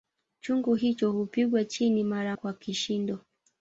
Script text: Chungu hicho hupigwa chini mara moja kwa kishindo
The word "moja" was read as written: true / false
false